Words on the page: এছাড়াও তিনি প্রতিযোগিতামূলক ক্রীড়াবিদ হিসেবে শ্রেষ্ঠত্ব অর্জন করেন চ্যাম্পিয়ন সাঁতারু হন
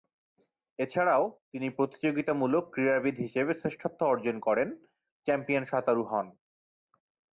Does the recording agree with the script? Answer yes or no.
yes